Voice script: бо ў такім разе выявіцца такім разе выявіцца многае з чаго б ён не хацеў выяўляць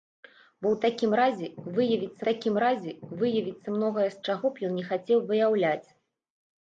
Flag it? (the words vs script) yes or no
no